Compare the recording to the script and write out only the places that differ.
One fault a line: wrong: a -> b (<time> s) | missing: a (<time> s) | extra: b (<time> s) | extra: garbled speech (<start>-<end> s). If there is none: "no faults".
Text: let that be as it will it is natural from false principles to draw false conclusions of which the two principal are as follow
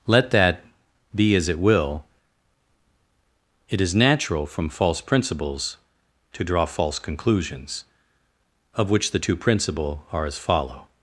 no faults